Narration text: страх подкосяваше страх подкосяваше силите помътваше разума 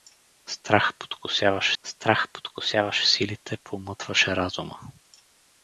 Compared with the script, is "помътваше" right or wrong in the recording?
right